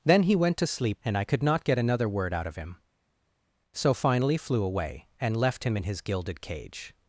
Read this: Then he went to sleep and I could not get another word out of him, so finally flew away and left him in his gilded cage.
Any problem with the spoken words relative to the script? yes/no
no